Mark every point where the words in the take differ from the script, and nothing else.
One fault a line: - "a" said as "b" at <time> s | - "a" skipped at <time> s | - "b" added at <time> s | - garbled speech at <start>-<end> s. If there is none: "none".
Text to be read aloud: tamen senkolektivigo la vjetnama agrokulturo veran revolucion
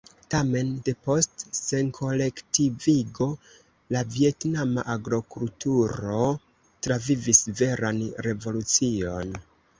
- "depost" added at 0.9 s
- "travivis" added at 6.9 s